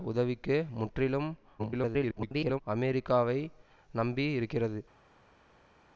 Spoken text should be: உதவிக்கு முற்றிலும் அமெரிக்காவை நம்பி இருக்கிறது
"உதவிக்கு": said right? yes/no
yes